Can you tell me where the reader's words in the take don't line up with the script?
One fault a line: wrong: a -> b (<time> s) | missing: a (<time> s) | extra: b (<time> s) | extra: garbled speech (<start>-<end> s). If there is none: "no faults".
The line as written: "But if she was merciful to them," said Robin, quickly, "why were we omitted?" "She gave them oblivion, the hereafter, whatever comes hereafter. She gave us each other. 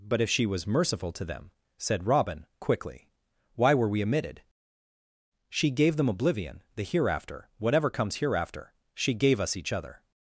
no faults